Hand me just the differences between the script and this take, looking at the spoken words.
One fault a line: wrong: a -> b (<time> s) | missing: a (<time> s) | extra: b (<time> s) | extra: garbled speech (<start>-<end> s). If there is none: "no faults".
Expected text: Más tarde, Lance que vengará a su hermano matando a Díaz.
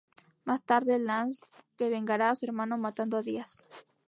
no faults